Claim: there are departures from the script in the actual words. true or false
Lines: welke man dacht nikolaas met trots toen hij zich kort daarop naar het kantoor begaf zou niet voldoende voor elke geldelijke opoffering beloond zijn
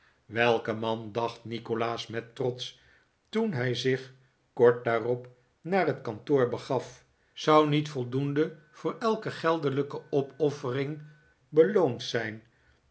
false